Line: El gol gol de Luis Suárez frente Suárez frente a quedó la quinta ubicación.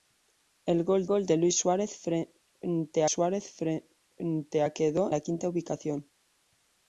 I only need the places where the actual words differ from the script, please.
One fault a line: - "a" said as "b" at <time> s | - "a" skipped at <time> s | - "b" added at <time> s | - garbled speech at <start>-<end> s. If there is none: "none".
none